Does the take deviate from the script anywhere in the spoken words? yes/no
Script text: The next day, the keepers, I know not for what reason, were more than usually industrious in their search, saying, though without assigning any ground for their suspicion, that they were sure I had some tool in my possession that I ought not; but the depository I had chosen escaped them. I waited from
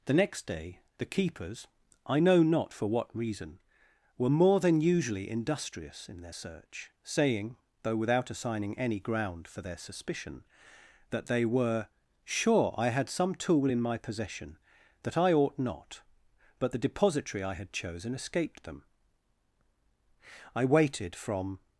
no